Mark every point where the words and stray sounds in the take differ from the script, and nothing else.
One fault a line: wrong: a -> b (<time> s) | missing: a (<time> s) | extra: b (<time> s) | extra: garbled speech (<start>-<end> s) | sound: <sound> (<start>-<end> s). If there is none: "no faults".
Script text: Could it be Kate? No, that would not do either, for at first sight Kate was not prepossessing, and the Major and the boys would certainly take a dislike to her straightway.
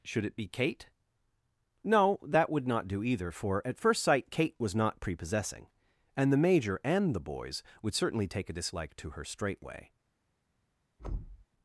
wrong: Could -> Should (0.0 s)
sound: thud (11.0-11.5 s)